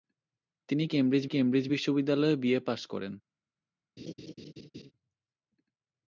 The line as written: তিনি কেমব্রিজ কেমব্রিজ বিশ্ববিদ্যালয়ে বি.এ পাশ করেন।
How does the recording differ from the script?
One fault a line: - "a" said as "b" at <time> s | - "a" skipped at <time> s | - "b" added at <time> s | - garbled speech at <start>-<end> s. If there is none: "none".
none